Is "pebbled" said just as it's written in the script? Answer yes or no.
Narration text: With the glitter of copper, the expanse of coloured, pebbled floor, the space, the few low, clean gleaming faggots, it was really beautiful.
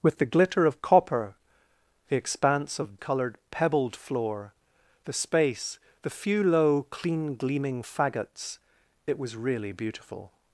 yes